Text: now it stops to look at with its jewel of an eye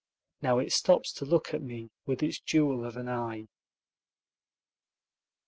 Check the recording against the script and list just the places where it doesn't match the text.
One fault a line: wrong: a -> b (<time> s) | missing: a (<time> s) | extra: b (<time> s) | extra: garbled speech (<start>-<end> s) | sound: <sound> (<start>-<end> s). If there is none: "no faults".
extra: me (1.6 s)